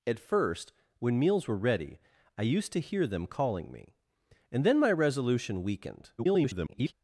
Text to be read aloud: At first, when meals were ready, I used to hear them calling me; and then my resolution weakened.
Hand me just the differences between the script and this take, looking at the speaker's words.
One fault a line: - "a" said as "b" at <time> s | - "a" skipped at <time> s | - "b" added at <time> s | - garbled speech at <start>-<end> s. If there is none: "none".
- garbled speech at 6.2-6.9 s